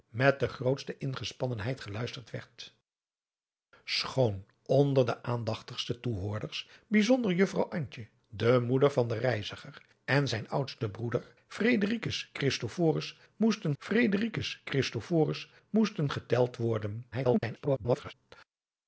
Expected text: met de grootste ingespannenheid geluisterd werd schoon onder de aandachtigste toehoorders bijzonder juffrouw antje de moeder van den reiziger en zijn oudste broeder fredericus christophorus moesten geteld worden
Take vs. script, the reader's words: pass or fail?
fail